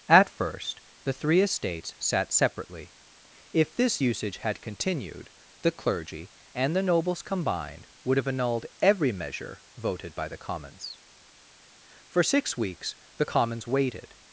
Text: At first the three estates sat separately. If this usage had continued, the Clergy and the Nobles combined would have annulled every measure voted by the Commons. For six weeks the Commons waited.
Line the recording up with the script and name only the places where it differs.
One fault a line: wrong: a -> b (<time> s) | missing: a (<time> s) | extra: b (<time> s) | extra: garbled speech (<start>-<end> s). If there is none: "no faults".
no faults